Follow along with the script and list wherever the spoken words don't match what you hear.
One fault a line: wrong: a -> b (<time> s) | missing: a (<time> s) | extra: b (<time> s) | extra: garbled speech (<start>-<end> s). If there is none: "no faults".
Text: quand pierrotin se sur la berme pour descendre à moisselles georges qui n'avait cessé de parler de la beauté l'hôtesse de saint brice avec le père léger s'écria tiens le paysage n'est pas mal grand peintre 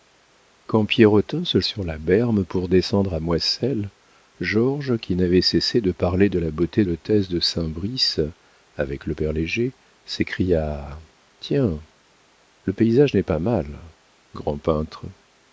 no faults